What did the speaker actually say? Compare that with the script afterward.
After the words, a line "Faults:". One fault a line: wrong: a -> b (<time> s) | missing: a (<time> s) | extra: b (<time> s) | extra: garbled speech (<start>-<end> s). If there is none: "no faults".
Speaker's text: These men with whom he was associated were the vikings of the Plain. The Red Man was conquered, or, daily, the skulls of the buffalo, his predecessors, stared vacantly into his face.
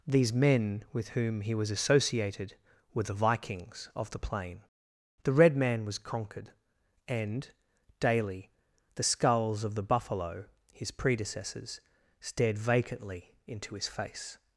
These men with whom he was associated were the vikings of the Plain. The Red Man was conquered, and, daily, the skulls of the buffalo, his predecessors, stared vacantly into his face.
Faults:
wrong: or -> and (7.1 s)